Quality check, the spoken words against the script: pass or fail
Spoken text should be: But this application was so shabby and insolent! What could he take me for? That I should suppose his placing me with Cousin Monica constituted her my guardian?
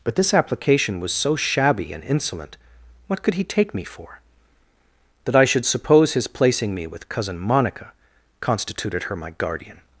pass